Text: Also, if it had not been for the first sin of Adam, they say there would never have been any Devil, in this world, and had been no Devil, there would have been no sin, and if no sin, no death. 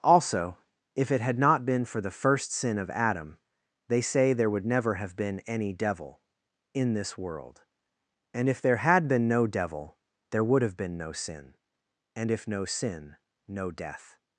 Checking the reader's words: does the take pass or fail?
fail